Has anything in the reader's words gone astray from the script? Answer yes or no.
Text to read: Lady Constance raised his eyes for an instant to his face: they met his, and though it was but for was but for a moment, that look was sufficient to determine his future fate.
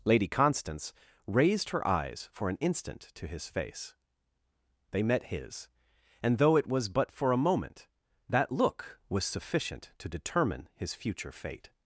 yes